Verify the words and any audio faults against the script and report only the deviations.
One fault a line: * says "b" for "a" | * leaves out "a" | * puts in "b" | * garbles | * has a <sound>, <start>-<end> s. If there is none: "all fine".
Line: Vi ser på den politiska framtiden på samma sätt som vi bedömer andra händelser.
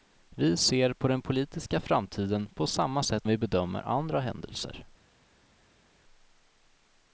* leaves out "som"